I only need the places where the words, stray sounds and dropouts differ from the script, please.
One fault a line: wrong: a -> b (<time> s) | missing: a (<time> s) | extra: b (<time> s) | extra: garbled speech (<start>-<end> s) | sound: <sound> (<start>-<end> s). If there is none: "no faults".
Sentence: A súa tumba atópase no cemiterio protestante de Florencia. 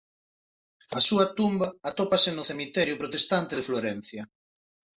no faults